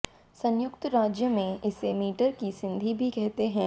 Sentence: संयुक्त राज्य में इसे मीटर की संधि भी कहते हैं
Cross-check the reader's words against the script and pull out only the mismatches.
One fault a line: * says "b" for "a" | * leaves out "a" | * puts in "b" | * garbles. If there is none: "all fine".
all fine